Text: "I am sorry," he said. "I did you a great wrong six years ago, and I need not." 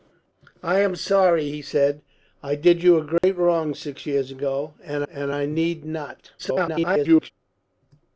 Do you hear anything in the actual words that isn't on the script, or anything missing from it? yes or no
yes